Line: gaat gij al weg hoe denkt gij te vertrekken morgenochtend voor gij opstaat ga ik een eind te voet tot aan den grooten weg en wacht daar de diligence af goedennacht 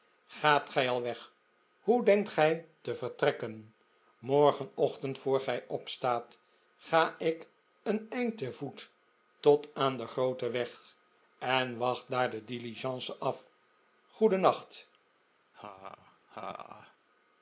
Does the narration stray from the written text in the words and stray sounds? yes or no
yes